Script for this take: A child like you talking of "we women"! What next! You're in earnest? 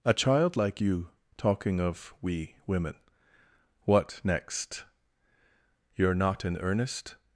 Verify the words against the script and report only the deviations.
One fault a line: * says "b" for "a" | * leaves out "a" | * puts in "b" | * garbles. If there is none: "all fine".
* puts in "not"